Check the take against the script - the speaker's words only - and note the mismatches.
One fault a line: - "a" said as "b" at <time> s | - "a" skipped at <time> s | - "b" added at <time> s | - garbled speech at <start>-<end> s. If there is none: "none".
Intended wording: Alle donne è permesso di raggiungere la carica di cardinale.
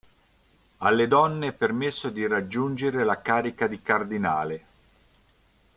none